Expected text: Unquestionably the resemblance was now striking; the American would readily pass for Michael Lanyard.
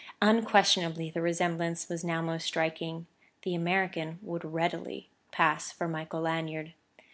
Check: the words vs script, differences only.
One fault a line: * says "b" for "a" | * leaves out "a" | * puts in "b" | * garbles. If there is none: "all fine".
* puts in "most"